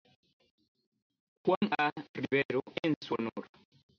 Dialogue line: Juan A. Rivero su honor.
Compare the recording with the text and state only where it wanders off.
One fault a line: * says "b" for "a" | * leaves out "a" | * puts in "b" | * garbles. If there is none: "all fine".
* puts in "en"